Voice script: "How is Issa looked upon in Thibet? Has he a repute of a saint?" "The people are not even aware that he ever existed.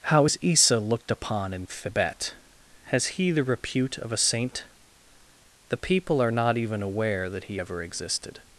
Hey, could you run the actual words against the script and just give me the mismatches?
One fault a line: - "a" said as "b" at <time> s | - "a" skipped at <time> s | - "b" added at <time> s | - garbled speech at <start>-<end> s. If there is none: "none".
- "a" said as "the" at 3.3 s